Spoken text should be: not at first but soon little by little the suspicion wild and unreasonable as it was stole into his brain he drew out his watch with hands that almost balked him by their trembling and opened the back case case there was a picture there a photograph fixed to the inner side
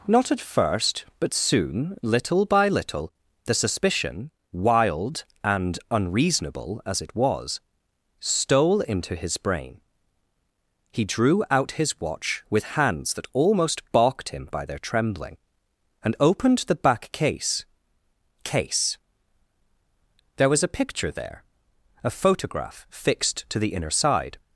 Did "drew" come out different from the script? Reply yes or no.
no